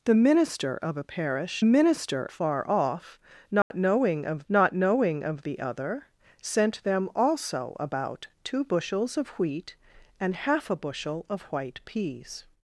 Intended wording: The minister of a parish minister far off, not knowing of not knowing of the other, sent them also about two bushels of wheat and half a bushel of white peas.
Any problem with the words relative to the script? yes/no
no